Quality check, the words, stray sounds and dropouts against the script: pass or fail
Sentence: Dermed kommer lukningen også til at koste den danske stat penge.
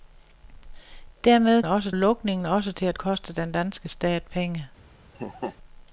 fail